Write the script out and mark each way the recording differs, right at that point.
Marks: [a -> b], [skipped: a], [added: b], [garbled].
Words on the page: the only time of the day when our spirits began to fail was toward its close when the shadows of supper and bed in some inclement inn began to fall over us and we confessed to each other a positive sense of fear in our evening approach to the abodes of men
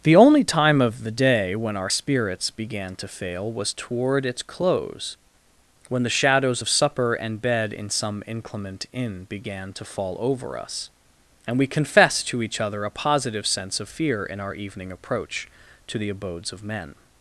the only time of the day when our spirits began to fail was toward its close when the shadows of supper and bed in some inclement inn began to fall over us and we confessed to each other a positive sense of fear in our evening approach to the abodes of men